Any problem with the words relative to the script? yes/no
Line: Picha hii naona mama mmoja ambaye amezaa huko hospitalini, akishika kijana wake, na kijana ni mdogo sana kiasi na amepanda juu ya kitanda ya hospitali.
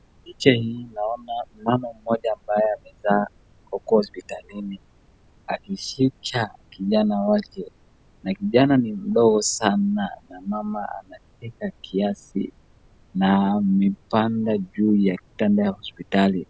yes